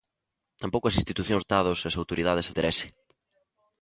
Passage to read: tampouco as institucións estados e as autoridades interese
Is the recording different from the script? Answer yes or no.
no